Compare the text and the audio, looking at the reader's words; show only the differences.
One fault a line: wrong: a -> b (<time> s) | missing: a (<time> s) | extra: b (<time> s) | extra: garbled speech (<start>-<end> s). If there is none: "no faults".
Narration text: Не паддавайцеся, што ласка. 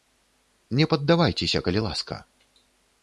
wrong: што -> калі (1.7 s)